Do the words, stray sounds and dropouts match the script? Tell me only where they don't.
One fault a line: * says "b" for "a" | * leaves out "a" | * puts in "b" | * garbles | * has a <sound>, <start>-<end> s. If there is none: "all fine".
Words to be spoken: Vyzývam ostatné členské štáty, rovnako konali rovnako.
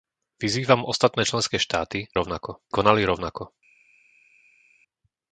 all fine